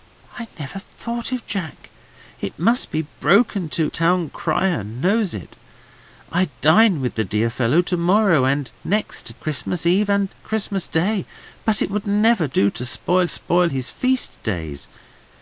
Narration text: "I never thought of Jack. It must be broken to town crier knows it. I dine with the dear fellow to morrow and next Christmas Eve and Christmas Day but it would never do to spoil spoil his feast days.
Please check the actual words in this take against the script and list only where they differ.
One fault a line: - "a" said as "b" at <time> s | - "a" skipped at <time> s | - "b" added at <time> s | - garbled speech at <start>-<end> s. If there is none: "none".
none